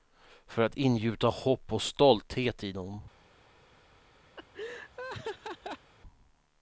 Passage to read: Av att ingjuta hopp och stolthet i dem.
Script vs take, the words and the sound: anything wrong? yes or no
yes